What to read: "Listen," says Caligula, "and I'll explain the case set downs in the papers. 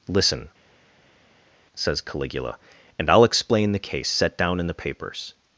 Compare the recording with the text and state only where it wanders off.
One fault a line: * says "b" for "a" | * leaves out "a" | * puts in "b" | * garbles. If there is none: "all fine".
* says "down" for "downs"